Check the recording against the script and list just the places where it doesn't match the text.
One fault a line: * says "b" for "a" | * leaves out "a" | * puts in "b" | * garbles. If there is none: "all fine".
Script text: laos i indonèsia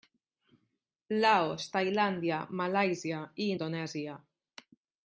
* puts in "tailàndia malàisia"